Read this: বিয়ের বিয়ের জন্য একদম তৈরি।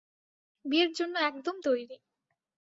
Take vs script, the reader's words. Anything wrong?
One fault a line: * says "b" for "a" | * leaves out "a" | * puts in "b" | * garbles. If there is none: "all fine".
* leaves out "বিয়ের"